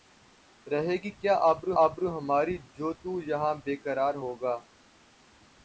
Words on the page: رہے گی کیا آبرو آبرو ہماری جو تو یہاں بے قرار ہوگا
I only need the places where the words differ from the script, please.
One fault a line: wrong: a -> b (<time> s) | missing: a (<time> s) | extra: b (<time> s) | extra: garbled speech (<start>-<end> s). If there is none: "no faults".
no faults